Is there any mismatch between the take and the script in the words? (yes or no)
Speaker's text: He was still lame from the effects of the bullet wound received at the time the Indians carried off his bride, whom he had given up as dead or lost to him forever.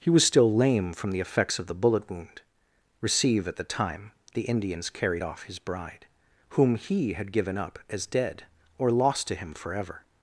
yes